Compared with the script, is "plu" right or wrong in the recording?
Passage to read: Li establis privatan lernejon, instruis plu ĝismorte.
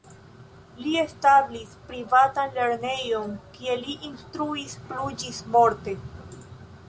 right